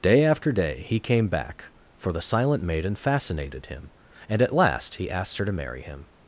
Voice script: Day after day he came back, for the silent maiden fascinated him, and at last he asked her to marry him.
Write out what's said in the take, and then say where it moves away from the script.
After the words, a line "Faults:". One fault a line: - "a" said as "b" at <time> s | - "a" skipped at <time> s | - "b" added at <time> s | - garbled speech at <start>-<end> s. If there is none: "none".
Day after day he came back, for the silent maiden fascinated him, and at last he asked her to marry him.
Faults:
none